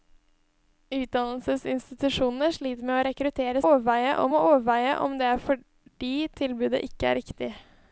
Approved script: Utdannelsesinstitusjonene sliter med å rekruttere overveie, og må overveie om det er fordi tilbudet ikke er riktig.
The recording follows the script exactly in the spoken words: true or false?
true